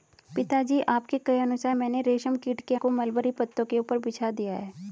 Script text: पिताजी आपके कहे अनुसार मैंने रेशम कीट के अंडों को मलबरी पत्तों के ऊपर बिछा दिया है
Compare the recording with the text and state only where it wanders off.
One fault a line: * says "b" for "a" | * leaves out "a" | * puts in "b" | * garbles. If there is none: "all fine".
* leaves out "अंडों"